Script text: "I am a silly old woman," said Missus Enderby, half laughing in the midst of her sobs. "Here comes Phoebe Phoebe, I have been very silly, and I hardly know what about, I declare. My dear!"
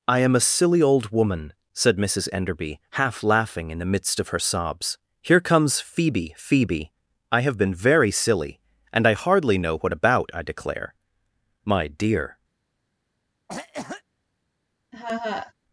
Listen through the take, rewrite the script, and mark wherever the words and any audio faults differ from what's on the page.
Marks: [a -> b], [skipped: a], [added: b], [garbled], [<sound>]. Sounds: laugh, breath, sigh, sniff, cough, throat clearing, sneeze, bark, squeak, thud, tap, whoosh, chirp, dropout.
"I am a silly old woman," said Missus Enderby, half laughing in the midst of her sobs. "Here comes Phoebe Phoebe, I have been very silly, and I hardly know what about, I declare. My dear!" [cough] [laugh]